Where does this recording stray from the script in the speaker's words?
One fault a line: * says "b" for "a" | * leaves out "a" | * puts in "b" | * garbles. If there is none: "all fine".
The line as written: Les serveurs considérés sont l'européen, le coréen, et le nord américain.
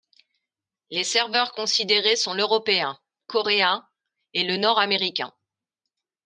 * leaves out "le"